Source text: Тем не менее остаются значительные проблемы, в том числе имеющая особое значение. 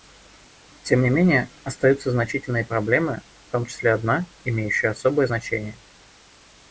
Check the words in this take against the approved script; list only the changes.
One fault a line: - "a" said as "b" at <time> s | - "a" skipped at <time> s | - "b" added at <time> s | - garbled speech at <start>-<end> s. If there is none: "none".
- "одна" added at 3.9 s